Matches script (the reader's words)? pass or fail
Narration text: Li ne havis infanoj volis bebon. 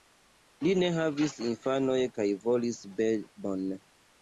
fail